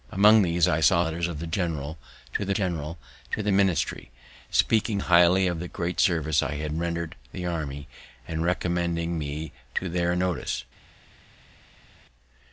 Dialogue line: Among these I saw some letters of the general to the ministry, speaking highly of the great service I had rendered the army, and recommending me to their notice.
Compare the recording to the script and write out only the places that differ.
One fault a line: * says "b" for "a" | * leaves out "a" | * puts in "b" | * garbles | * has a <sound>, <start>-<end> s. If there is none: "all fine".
* leaves out "some"
* puts in "general to the"